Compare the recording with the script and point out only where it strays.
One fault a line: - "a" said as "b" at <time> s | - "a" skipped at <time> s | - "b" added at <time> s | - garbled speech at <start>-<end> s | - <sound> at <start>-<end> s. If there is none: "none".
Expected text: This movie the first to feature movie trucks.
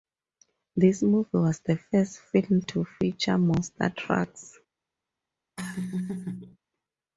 - "was" added at 1.3 s
- "film" added at 2.2 s
- "movie" said as "monster" at 3.4 s
- laugh at 5.6-6.6 s